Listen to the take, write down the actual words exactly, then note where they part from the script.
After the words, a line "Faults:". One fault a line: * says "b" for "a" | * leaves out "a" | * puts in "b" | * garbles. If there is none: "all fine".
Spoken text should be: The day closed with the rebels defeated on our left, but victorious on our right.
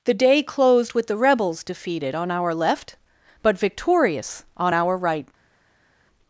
The day closed with the rebels defeated on our left, but victorious on our right.
Faults:
all fine